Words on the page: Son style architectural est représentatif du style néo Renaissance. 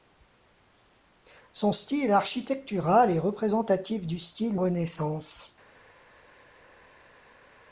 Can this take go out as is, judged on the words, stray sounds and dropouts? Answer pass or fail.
fail